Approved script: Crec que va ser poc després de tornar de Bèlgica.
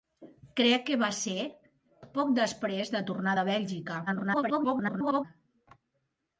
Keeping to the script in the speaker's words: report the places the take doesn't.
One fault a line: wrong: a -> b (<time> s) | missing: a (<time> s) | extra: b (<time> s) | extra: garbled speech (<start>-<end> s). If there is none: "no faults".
extra: garbled speech (4.1-5.2 s)